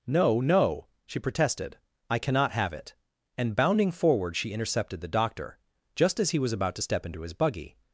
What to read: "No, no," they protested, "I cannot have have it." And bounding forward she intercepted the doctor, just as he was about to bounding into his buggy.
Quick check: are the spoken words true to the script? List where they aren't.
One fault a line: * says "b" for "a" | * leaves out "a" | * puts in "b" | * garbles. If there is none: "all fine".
* says "she" for "they"
* leaves out "have"
* says "step" for "bounding"